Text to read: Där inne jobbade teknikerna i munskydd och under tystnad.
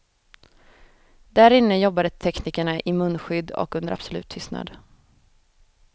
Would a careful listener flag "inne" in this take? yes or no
no